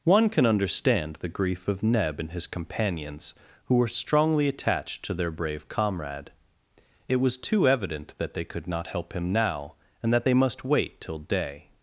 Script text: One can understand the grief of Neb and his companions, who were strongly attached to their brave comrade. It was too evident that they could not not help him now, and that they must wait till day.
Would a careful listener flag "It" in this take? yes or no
no